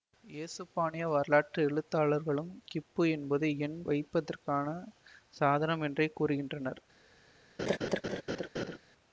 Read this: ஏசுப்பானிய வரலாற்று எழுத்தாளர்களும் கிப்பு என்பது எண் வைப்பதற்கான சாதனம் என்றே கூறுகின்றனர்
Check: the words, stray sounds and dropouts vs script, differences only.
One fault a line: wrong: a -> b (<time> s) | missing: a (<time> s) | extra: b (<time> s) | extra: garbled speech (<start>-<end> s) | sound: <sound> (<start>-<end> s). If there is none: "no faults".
sound: laugh (7.6-8.8 s)